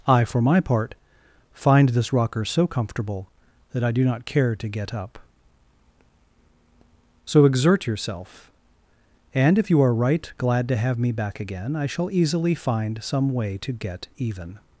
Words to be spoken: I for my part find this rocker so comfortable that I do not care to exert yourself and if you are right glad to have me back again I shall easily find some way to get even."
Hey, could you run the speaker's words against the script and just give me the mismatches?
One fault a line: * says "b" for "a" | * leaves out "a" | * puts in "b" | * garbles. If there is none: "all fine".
* puts in "get up So"